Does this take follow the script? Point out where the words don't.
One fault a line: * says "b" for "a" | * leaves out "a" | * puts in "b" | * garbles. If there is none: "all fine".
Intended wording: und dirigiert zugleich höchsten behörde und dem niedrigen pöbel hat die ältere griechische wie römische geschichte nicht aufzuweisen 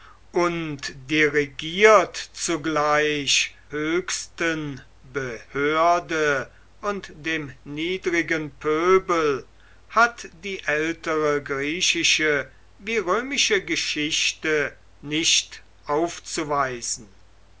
all fine